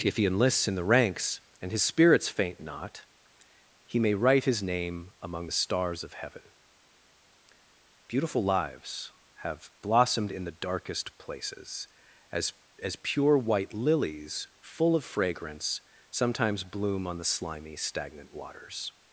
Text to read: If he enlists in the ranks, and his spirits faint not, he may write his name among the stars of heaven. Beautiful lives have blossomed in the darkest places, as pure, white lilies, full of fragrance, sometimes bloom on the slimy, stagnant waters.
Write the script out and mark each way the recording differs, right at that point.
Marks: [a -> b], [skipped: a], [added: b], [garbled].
If he enlists in the ranks, and his spirits faint not, he may write his name among the stars of heaven. Beautiful lives have blossomed in the darkest places, as [added: as] pure, white lilies, full of fragrance, sometimes bloom on the slimy, stagnant waters.